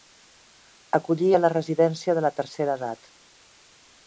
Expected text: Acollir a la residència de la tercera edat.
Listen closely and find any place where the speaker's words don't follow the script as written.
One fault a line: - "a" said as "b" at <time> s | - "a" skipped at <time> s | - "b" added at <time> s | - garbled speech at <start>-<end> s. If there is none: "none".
none